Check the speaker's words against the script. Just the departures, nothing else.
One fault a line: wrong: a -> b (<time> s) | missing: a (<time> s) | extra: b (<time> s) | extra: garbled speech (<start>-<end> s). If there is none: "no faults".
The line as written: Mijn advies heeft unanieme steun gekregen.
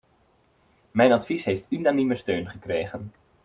no faults